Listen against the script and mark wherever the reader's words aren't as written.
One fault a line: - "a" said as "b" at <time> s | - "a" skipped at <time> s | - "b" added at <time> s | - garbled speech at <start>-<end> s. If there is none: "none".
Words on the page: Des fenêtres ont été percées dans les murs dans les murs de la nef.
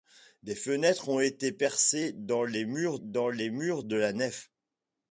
none